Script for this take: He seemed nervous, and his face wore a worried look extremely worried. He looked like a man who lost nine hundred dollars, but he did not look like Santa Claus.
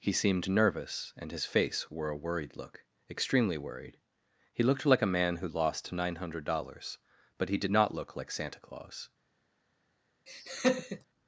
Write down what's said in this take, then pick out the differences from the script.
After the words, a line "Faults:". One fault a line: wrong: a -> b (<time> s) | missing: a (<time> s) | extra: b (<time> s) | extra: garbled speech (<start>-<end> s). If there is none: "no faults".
He seemed nervous, and his face wore a worried look extremely worried. He looked like a man who lost nine hundred dollars, but he did not look like Santa Claus.
Faults:
no faults